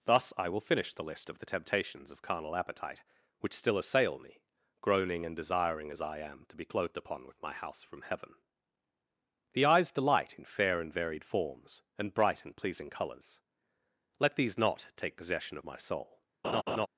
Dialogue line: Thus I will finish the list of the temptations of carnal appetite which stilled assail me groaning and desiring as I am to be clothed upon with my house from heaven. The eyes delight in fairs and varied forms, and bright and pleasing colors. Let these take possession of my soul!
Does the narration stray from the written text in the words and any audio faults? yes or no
yes